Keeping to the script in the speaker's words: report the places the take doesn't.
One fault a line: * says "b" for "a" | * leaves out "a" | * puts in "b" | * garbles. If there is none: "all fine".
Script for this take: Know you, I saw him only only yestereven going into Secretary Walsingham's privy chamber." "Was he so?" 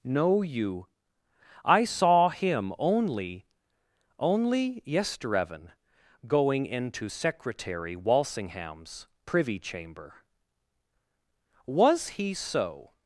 all fine